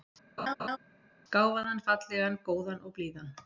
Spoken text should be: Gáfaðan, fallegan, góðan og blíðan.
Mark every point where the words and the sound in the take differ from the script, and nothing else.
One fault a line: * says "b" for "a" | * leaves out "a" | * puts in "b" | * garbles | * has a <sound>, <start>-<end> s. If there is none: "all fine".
* has a laugh, 0.4-0.8 s